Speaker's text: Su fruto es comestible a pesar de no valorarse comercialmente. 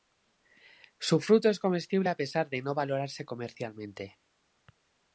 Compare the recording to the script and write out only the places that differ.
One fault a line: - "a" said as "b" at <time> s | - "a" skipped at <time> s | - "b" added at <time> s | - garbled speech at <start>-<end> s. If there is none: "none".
none